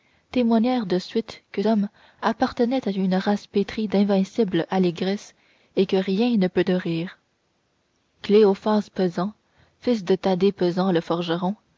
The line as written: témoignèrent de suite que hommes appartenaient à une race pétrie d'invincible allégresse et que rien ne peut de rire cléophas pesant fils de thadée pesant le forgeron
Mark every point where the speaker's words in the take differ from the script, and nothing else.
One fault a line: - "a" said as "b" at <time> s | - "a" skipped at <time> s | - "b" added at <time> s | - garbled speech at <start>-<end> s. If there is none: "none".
none